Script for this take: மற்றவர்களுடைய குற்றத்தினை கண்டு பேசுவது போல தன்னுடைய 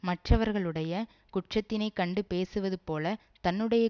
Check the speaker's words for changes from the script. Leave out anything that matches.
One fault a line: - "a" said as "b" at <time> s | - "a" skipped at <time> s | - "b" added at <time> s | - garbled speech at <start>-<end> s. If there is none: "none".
none